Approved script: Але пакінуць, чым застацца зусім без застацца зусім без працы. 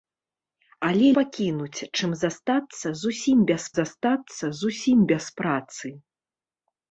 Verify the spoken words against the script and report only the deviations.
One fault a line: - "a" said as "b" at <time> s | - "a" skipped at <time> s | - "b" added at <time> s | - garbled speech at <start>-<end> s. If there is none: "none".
none